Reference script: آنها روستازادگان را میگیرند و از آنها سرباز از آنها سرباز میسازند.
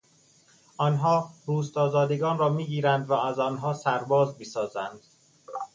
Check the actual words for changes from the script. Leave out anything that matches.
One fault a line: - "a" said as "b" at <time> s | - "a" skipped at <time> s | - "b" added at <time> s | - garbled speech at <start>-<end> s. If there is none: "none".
- "از آنها سرباز" skipped at 4.3 s